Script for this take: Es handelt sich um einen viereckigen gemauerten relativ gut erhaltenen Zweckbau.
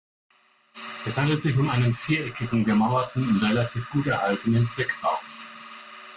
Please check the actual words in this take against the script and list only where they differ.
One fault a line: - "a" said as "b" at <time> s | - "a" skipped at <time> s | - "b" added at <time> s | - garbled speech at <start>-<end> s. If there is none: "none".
- "und" added at 3.3 s